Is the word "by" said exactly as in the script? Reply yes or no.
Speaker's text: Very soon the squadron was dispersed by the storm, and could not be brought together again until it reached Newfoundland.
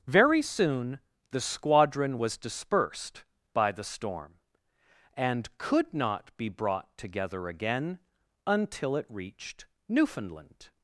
yes